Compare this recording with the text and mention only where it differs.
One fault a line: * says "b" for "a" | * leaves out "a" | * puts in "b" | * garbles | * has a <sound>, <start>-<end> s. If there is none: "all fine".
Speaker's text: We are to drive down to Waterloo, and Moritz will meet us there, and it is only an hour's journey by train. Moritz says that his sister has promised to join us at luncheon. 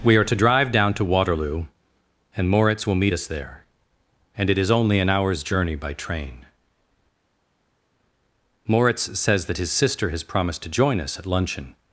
all fine